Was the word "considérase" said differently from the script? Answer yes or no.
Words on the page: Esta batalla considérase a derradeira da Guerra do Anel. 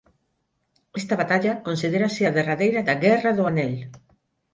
no